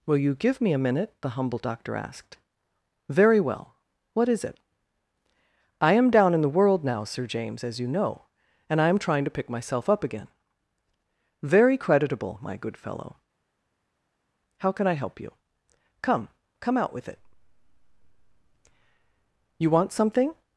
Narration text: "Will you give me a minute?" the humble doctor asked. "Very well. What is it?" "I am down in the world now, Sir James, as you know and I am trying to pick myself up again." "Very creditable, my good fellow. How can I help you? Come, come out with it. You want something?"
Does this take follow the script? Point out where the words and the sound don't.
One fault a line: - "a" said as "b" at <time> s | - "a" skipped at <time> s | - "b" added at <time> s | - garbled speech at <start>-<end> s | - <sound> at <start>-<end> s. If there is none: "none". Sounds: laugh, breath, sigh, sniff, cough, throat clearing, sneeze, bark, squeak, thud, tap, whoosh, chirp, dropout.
none